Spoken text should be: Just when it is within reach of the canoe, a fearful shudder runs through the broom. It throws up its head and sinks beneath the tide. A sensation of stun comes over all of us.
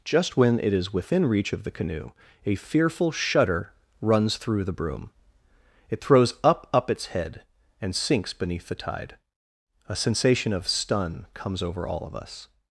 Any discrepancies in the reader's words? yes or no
yes